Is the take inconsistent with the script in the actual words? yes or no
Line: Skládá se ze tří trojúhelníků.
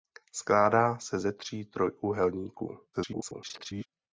yes